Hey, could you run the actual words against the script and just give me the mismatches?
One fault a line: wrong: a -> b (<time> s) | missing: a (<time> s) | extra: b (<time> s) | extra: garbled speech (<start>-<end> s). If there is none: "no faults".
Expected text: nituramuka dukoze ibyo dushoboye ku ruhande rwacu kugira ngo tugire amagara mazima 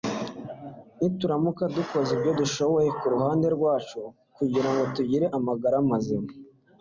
no faults